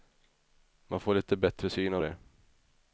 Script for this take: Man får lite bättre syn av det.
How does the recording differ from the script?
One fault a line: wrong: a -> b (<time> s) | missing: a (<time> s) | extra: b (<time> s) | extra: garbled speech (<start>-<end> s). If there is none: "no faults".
no faults